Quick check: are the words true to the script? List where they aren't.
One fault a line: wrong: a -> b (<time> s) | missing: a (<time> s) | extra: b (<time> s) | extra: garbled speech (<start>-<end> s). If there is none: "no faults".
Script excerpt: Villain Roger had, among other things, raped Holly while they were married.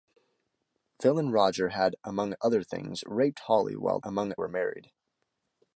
wrong: they -> among (4.0 s)